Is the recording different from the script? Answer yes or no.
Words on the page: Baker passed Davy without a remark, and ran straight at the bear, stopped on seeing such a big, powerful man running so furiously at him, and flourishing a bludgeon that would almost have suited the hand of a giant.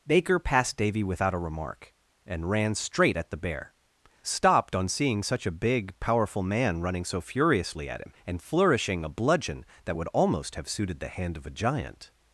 no